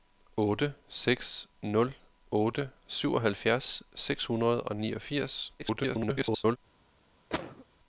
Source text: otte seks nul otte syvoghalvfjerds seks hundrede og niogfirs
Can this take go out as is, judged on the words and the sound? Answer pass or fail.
fail